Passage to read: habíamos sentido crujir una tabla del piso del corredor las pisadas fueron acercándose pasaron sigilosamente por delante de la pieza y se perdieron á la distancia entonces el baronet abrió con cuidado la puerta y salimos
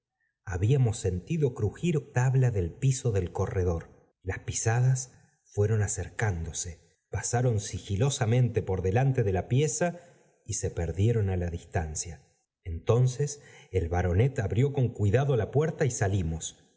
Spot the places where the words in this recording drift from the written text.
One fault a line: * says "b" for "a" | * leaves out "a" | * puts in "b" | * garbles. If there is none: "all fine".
* leaves out "una"